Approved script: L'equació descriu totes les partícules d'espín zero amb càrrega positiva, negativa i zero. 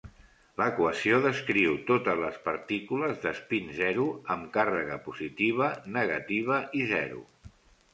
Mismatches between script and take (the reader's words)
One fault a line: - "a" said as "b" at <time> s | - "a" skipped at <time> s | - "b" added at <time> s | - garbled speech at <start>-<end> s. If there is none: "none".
none